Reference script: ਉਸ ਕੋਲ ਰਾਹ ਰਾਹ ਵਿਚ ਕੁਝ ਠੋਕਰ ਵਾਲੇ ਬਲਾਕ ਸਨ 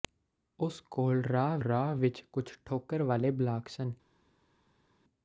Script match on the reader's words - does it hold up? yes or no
yes